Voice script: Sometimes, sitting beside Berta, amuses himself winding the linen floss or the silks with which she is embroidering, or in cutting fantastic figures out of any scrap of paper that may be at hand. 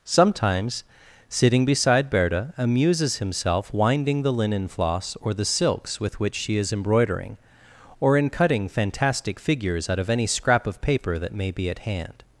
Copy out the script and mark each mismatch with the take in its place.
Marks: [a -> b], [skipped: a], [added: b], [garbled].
Sometimes, sitting beside Berta, amuses himself winding the linen floss or the silks with which she is embroidering, or in cutting fantastic figures out of any scrap of paper that may be at hand.